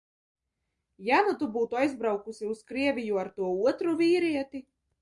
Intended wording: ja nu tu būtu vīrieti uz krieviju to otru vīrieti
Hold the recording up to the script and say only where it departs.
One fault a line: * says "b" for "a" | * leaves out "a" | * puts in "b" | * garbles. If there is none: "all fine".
* says "aizbraukusi" for "vīrieti"
* puts in "ar"